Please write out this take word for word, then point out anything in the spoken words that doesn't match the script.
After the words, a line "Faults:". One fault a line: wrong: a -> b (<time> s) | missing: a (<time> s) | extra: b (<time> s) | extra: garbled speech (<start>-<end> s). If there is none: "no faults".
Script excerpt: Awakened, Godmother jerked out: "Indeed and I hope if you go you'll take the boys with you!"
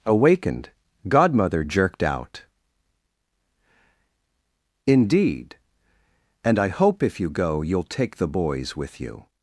Awakened, Godmother jerked out: "Indeed and I hope if you go you'll take the boys with you!"
Faults:
no faults